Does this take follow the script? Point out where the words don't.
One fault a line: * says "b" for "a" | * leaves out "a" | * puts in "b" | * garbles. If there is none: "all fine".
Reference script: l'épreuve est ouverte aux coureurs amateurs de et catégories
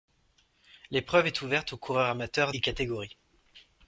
* leaves out "de"